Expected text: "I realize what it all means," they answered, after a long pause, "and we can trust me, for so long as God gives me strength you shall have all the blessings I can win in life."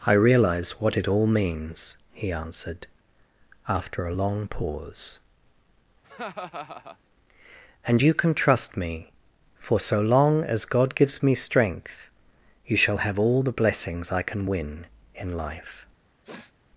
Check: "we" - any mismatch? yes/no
yes